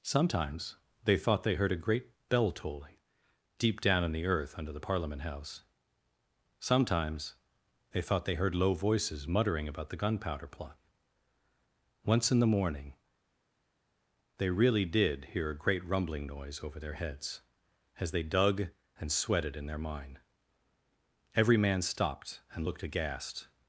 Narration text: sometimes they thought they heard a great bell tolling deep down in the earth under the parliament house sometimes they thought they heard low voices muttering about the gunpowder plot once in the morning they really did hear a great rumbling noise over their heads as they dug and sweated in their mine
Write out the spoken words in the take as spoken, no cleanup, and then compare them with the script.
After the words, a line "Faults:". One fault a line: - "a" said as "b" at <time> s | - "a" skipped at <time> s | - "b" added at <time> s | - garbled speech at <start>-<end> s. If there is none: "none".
sometimes they thought they heard a great bell tolling deep down in the earth under the parliament house sometimes they thought they heard low voices muttering about the gunpowder plot once in the morning they really did hear a great rumbling noise over their heads as they dug and sweated in their mine every man stopped and looked aghast
Faults:
- "every man stopped and looked aghast" added at 21.3 s